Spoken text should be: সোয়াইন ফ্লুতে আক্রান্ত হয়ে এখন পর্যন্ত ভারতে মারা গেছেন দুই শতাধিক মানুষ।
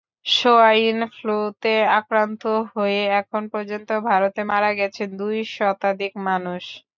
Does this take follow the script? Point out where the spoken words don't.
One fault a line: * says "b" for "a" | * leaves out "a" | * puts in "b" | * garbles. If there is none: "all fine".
all fine